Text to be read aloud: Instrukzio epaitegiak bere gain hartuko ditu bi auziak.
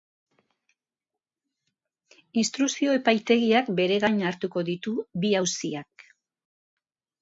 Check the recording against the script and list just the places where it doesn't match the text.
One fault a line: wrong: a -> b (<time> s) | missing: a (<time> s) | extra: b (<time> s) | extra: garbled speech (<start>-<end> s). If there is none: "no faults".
no faults